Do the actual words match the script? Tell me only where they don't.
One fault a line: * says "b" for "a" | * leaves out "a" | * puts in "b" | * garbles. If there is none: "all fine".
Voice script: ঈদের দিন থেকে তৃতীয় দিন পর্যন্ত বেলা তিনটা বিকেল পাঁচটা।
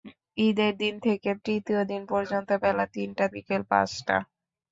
all fine